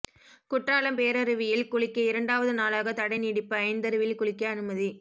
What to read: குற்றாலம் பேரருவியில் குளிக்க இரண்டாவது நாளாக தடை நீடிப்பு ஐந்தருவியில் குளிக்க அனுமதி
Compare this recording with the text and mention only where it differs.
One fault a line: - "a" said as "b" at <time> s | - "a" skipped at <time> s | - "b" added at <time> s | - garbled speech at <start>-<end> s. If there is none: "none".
none